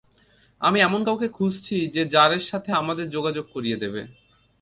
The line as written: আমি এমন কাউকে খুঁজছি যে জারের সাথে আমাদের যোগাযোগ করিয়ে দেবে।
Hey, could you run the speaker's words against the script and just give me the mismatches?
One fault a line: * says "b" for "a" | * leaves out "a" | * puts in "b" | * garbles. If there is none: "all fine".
all fine